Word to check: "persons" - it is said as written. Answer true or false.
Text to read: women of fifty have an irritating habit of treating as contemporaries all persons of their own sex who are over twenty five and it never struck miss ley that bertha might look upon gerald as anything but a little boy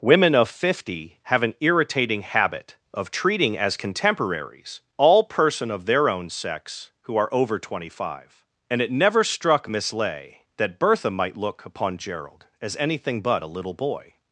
false